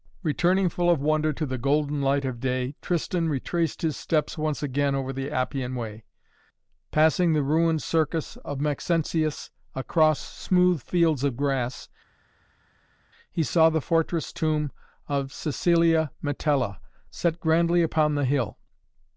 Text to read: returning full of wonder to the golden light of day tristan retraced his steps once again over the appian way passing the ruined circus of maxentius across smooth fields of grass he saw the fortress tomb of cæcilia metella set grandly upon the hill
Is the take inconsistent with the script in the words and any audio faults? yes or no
no